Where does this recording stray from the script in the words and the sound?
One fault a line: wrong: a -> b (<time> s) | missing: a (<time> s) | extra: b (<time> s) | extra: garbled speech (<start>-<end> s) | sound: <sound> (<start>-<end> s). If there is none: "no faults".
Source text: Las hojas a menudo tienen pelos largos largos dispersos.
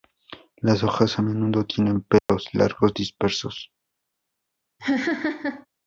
sound: dropout (2.2-2.3 s)
missing: largos (3.0 s)
sound: laugh (4.8-5.7 s)